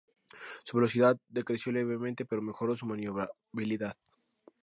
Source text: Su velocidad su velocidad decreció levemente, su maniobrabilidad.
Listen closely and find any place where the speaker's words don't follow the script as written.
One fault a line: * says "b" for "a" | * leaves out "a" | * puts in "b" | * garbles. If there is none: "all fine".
* says "decreció levemente pero mejoró" for "su velocidad decreció levemente"